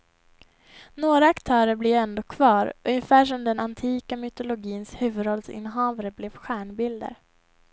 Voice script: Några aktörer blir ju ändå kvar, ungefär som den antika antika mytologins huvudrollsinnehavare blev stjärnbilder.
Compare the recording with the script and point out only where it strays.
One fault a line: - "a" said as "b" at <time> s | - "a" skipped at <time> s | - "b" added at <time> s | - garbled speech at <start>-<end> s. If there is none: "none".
- "antika" skipped at 4.2 s